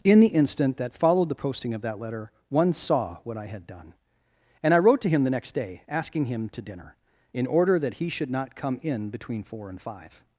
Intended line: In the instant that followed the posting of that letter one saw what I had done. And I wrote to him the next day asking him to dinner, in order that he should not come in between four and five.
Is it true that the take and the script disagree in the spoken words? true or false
false